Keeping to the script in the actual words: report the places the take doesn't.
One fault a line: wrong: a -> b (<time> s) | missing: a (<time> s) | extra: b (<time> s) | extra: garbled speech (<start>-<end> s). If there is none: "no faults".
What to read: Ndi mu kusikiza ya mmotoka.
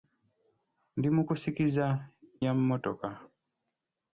no faults